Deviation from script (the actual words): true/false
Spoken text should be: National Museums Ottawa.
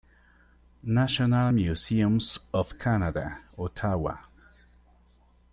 true